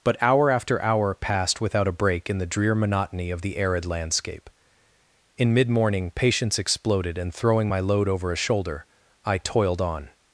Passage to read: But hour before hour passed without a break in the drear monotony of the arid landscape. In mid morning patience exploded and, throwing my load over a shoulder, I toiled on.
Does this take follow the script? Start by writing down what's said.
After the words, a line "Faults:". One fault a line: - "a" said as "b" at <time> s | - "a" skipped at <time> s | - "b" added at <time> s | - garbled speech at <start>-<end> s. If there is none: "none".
But hour after hour passed without a break in the drear monotony of the arid landscape. In mid morning patience exploded and, throwing my load over a shoulder, I toiled on.
Faults:
- "before" said as "after" at 0.5 s